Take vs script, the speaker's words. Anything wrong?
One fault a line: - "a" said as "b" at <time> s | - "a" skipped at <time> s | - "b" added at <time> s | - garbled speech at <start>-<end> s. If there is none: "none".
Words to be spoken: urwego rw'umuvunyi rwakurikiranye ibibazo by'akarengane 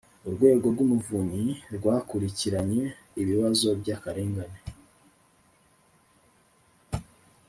none